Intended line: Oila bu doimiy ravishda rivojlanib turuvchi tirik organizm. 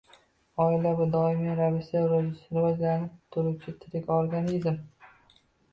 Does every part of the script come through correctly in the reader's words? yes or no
yes